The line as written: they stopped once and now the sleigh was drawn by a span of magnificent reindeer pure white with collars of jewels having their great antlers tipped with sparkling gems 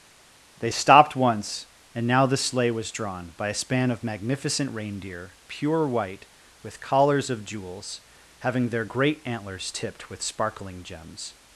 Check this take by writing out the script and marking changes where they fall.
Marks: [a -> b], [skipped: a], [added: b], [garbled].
they stopped once and now the sleigh was drawn by a span of magnificent reindeer pure white with collars of jewels having their great antlers tipped with sparkling gems